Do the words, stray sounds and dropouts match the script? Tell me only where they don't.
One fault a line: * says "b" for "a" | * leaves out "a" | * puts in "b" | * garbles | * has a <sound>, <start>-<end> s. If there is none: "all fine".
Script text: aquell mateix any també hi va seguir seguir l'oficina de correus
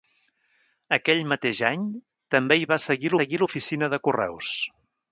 all fine